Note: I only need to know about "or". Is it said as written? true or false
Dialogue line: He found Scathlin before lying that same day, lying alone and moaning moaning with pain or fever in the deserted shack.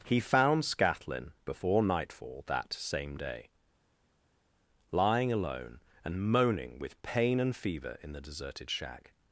false